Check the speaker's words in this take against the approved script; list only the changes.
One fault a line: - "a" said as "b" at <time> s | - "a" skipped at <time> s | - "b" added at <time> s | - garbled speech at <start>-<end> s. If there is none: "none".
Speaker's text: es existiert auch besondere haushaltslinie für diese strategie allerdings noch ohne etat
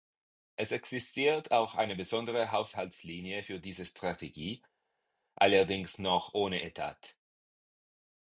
- "eine" added at 1.8 s